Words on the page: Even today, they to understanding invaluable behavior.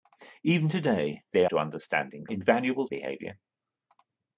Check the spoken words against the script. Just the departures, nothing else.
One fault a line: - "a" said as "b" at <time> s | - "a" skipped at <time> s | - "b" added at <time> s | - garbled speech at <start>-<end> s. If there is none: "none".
none